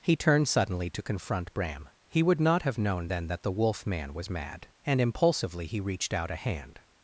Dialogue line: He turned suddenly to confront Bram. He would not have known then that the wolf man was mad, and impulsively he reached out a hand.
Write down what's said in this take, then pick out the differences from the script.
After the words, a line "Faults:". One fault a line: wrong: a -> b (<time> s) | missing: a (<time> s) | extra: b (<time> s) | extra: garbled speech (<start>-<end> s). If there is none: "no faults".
He turned suddenly to confront Bram. He would not have known then that the wolf man was mad, and impulsively he reached out a hand.
Faults:
no faults